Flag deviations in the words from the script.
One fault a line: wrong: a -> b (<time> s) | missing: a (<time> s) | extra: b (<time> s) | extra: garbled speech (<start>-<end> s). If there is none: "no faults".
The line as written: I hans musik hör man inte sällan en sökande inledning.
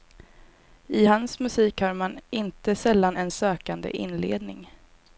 no faults